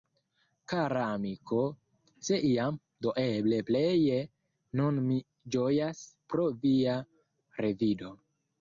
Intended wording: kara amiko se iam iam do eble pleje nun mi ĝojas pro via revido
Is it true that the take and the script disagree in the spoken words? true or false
true